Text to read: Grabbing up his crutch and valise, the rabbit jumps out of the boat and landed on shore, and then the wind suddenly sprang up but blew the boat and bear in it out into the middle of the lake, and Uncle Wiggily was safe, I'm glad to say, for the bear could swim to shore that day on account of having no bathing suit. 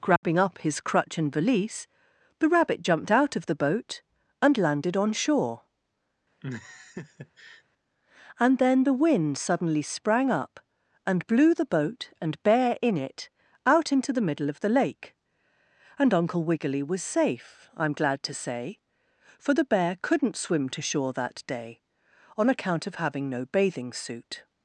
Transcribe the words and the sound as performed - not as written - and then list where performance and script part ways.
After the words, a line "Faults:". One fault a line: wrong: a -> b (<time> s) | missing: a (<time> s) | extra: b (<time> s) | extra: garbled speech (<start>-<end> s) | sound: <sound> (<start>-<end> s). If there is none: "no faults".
Grabbing up his crutch and valise, the rabbit jumped out of the boat and landed on shore, and then the wind suddenly sprang up and blew the boat and bear in it out into the middle of the lake, and Uncle Wiggily was safe, I'm glad to say, for the bear couldn't swim to shore that day on account of having no bathing suit.
Faults:
sound: dropout (0.2-0.2 s)
wrong: jumps -> jumped (2.8 s)
sound: laugh (6.4-7.6 s)
wrong: but -> and (11.1 s)
wrong: could -> couldn't (20.0 s)